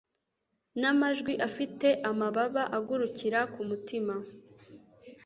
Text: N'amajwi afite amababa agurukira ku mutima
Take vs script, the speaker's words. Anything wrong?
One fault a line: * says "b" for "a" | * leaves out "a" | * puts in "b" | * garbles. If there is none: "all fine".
all fine